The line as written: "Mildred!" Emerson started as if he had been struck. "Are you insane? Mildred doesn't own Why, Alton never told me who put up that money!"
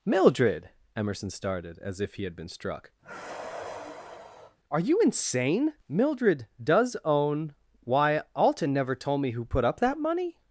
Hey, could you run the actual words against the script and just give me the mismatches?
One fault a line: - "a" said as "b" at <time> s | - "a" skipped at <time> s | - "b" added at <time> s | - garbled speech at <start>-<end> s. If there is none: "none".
- "doesn't" said as "does" at 6.6 s